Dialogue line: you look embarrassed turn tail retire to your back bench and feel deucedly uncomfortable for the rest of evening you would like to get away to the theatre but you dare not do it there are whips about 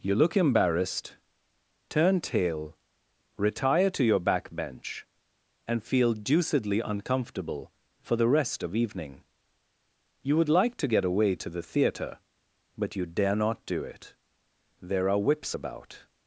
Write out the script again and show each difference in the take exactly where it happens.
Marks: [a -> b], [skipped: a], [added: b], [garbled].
you look embarrassed turn tail retire to your back bench and feel deucedly uncomfortable for the rest of evening you would like to get away to the theatre but you dare not do it there are whips about